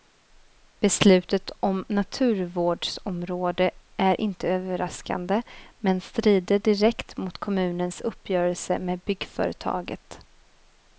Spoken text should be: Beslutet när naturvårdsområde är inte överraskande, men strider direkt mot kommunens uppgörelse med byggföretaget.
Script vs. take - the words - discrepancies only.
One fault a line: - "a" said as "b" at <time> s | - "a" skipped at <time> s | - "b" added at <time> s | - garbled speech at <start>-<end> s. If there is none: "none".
- "när" said as "om" at 1.6 s